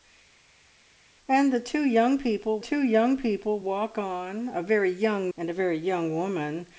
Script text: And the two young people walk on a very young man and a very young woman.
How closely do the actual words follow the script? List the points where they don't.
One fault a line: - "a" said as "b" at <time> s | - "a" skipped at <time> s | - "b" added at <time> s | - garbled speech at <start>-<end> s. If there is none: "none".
- "two young people" added at 2.6 s
- "man" skipped at 5.3 s